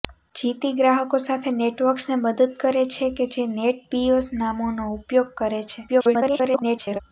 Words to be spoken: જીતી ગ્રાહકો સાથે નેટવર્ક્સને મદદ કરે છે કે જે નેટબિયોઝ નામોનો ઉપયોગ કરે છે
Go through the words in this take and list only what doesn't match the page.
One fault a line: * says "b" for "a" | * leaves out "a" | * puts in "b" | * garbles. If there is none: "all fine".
* garbles